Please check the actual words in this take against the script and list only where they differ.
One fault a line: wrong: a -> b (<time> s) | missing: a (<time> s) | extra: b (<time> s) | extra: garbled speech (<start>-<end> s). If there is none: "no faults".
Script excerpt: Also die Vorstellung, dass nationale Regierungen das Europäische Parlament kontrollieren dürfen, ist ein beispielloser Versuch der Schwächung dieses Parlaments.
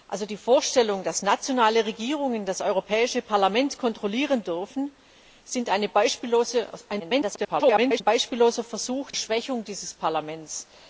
extra: garbled speech (7.0-8.0 s)
missing: der (9.1 s)